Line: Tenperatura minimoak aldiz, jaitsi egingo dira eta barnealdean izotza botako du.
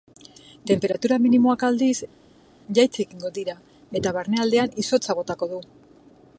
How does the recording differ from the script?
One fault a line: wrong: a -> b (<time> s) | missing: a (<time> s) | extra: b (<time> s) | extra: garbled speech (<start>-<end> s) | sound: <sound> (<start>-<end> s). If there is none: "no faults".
no faults